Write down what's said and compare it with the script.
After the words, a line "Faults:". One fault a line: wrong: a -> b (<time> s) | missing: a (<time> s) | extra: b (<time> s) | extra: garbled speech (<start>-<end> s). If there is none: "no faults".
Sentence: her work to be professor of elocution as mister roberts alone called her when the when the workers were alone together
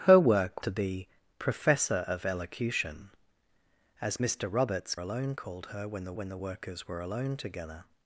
her work to be professor of elocution as mister roberts alone called her when the when the workers were alone together
Faults:
no faults